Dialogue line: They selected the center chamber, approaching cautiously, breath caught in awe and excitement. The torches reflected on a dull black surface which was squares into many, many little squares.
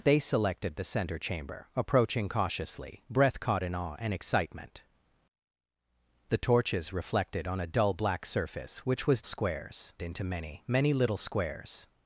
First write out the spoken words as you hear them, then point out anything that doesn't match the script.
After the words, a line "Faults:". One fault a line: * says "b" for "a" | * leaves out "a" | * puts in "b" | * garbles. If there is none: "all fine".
They selected the center chamber, approaching cautiously, breath caught in awe and excitement. The torches reflected on a dull black surface which was squares into many, many little squares.
Faults:
all fine